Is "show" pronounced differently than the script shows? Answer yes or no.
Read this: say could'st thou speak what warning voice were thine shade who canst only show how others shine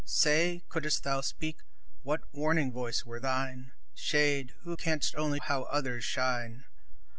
yes